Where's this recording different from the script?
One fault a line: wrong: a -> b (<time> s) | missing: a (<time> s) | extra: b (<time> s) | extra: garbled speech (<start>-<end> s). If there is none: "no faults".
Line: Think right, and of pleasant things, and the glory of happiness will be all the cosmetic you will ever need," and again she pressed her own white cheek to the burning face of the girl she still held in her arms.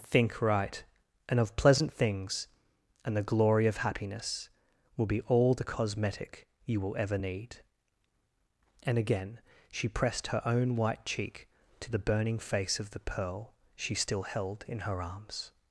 wrong: girl -> pearl (13.0 s)